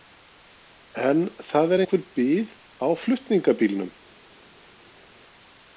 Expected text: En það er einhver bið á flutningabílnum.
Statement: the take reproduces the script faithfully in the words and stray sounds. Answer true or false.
true